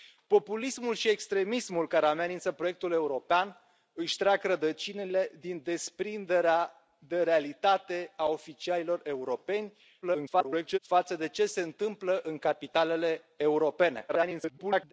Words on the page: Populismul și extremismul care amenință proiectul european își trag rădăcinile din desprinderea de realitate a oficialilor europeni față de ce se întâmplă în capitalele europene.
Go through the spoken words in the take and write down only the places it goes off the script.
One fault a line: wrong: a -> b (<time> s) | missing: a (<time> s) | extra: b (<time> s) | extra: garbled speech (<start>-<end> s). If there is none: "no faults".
extra: garbled speech (10.0-10.8 s)
extra: garbled speech (14.1-14.9 s)